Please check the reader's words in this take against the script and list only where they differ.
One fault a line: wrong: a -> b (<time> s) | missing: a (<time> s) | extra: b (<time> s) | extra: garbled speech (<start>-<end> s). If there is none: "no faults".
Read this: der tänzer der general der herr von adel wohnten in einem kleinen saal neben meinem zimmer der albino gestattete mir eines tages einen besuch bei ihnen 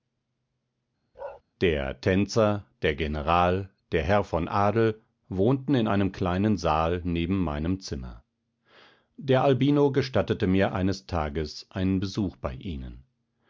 no faults